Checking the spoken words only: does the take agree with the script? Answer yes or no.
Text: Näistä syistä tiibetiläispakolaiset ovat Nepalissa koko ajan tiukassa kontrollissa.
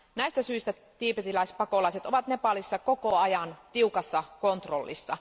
yes